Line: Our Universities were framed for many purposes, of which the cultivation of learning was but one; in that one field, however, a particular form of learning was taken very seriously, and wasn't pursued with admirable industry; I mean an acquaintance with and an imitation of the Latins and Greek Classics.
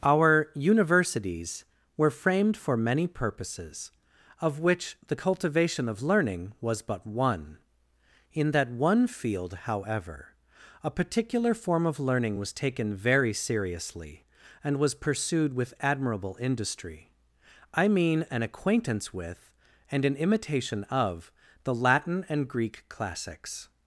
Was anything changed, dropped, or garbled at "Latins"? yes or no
yes